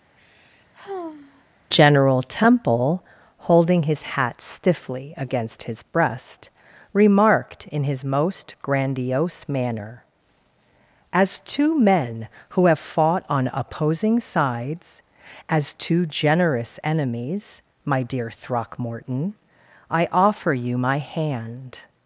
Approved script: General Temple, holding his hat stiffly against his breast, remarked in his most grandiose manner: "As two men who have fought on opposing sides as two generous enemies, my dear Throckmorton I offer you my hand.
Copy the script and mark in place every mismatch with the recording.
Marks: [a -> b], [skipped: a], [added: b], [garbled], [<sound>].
[sigh] General Temple, holding his hat stiffly against his breast, remarked in his most grandiose manner: "As two men who have fought on opposing sides as two generous enemies, my dear Throckmorton I offer you my hand.